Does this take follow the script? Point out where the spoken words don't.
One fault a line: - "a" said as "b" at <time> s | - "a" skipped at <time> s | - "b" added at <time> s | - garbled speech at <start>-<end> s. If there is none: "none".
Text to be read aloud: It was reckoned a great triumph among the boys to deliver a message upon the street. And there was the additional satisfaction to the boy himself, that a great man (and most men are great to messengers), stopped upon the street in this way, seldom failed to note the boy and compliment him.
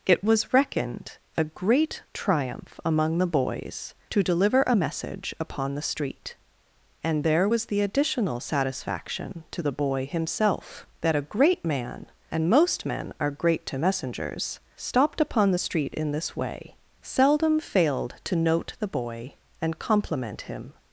none